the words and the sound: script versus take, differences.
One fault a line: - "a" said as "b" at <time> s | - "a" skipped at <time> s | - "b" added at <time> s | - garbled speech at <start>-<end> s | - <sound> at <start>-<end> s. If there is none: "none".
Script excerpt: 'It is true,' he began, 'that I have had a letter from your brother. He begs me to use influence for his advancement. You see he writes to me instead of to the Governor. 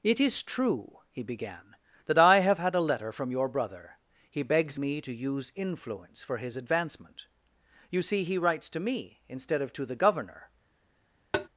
- tap at 11.3-11.5 s